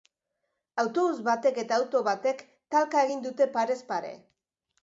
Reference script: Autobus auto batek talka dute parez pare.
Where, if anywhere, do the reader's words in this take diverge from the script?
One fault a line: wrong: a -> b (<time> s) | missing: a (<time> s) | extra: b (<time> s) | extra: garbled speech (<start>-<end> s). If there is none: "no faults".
extra: batek eta (1.3 s)
extra: egin (3.1 s)